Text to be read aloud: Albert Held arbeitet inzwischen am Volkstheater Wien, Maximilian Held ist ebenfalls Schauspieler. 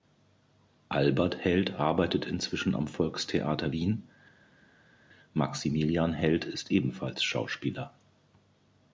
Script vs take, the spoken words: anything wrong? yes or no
no